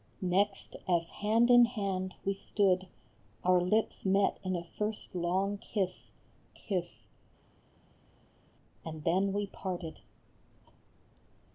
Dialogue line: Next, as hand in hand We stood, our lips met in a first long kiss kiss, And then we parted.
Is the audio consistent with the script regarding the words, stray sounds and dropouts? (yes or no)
yes